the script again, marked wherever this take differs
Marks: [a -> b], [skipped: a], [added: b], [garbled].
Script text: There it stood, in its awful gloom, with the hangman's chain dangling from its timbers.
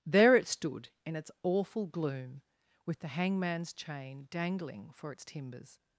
There it stood, in its awful gloom, with the hangman's chain dangling [from -> for] its timbers.